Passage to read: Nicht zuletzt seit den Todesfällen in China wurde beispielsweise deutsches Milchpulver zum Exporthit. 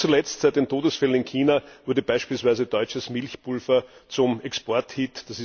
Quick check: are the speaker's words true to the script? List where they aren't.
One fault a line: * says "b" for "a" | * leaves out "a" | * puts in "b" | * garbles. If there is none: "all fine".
all fine